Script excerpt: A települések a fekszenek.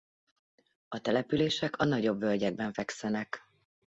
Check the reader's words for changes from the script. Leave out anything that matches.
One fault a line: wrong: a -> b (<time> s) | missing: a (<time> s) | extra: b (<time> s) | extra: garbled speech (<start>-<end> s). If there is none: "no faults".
extra: nagyobb völgyekben (1.9 s)